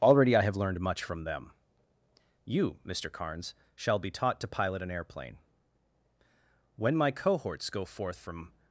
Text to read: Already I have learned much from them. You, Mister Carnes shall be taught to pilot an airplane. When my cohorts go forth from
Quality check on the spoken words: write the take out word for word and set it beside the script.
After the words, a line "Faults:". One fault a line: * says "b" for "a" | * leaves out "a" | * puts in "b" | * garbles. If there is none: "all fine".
Already I have learned much from them. You, Mister Carnes shall be taught to pilot an airplane. When my cohorts go forth from
Faults:
all fine